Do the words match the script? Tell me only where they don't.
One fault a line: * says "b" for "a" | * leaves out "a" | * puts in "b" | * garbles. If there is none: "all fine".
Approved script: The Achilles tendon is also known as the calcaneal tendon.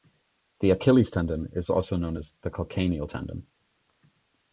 all fine